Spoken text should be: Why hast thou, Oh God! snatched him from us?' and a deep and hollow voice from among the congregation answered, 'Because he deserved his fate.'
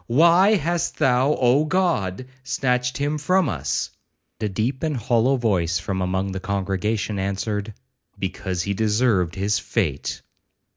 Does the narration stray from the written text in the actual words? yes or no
yes